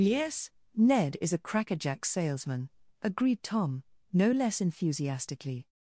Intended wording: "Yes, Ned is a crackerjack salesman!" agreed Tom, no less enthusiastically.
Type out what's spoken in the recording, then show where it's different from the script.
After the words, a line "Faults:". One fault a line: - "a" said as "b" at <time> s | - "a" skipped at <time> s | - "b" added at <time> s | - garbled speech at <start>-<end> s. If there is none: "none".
"Yes, Ned is a crackerjack salesman!" agreed Tom, no less enthusiastically.
Faults:
none